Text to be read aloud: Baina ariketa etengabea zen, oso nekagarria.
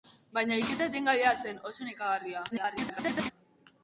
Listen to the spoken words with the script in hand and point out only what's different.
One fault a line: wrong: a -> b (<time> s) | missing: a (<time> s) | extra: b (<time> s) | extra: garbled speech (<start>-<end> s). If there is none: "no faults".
extra: garbled speech (2.5-3.3 s)